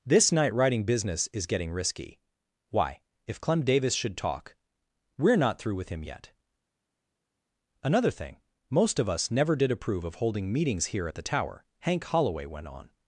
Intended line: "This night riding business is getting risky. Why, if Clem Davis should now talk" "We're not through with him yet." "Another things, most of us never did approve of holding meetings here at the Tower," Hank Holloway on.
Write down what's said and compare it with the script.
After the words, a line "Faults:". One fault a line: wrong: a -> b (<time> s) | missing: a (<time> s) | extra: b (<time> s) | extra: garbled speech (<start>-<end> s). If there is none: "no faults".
"This night riding business is getting risky. Why, if Clem Davis should talk" "We're not through with him yet." "Another thing, most of us never did approve of holding meetings here at the Tower," Hank Holloway went on.
Faults:
missing: now (4.2 s)
wrong: things -> thing (8.1 s)
extra: went (12.5 s)